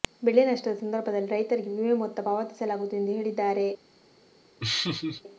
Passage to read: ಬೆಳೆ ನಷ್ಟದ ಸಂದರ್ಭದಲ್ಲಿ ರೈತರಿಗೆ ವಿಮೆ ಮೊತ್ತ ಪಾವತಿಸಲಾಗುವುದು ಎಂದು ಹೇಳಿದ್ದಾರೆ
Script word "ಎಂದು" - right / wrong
right